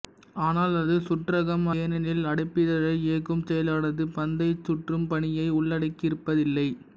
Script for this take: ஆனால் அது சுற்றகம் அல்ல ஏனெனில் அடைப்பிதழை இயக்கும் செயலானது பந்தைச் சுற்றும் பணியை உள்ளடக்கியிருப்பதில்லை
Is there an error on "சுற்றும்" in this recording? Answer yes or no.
no